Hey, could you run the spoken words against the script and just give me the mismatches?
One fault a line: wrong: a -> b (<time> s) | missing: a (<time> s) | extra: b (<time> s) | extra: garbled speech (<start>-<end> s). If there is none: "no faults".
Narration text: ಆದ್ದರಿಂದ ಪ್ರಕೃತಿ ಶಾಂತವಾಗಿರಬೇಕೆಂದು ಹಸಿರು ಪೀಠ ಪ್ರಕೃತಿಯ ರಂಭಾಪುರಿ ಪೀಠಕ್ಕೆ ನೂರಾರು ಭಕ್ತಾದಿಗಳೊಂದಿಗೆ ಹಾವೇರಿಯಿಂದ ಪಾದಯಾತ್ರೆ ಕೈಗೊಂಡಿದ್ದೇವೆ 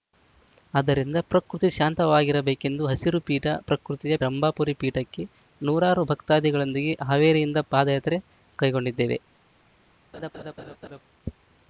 no faults